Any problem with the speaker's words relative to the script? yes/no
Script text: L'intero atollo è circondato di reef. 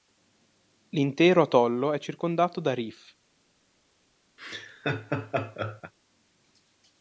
yes